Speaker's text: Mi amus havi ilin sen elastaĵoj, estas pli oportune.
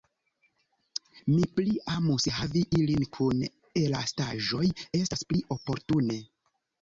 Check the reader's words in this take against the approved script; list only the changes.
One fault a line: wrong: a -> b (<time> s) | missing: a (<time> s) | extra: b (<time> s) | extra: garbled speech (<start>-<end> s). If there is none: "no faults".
extra: pli (1.6 s)
wrong: sen -> kun (3.2 s)